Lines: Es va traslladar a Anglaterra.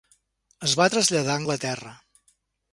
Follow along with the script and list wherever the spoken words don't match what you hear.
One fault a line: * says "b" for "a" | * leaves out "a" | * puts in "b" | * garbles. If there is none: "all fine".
all fine